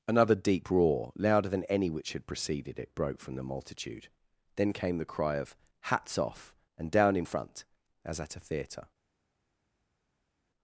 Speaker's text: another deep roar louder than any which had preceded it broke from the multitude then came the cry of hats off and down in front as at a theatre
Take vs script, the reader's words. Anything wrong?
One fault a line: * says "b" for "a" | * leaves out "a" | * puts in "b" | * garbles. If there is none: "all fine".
all fine